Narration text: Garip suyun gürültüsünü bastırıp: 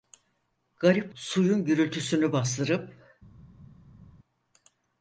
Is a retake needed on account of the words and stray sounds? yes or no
no